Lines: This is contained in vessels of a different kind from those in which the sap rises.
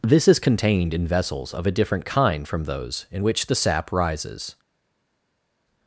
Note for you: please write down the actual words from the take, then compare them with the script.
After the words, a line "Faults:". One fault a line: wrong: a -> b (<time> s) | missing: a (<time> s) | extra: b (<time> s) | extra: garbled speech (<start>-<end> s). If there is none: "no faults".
This is contained in vessels of a different kind from those in which the sap rises.
Faults:
no faults